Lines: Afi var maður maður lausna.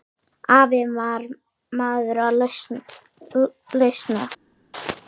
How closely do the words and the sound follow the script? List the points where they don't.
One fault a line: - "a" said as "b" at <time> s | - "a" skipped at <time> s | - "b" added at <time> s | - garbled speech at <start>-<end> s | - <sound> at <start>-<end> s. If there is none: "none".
- "maður" skipped at 2.2 s